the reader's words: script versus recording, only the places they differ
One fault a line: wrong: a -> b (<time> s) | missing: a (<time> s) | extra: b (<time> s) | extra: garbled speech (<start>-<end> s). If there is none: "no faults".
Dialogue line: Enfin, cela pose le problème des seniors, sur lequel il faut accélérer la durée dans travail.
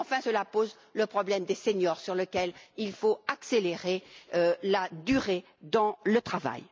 extra: le (6.0 s)